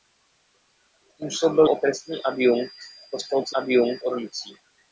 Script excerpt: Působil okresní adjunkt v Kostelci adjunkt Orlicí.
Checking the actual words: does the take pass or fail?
pass